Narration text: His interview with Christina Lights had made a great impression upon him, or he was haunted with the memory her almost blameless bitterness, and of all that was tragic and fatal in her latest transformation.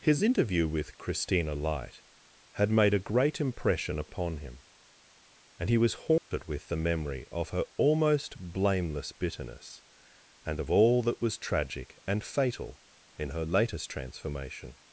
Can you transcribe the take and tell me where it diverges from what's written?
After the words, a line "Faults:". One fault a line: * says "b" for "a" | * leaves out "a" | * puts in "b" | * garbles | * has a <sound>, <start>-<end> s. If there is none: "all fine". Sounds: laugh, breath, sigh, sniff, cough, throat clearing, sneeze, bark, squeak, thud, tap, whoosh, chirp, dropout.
His interview with Christina Light had made a great impression upon him, and he was haunted with the memory of her almost blameless bitterness, and of all that was tragic and fatal in her latest transformation.
Faults:
* says "Light" for "Lights"
* says "and" for "or"
* has a dropout, 6.2-6.3 s
* puts in "of"